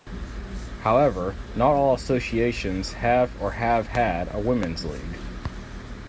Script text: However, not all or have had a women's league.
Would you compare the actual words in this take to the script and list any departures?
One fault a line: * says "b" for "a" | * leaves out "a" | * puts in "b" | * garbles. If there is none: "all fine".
* puts in "associations have"